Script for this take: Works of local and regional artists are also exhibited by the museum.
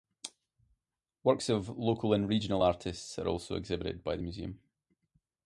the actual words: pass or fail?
pass